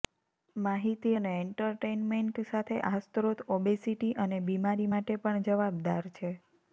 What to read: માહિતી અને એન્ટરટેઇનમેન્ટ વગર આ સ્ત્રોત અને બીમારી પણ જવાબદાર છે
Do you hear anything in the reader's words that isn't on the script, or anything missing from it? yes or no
yes